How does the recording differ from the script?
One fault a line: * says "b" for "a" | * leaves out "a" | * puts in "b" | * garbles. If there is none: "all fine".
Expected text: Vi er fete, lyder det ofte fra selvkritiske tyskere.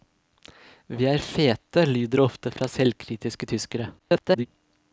* garbles